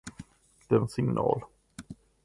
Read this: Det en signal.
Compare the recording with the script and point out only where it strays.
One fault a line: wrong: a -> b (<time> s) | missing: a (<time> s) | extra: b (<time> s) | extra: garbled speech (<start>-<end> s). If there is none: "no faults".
no faults